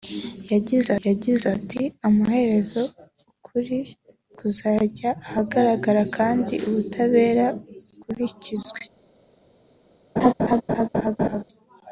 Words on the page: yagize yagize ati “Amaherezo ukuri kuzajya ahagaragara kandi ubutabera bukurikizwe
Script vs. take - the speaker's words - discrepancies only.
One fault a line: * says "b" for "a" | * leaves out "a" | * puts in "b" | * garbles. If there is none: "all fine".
all fine